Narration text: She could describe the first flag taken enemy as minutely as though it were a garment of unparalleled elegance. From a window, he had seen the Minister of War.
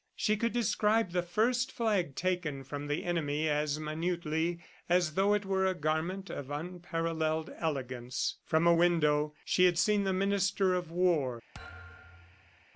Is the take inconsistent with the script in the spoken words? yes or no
yes